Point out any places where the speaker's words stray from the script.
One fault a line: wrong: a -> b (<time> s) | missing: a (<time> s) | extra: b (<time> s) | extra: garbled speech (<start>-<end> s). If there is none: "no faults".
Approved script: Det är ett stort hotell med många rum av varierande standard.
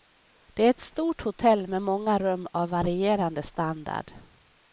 no faults